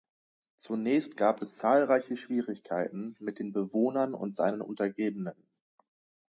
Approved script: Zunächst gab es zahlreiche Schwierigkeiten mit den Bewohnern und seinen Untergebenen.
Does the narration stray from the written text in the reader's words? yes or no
no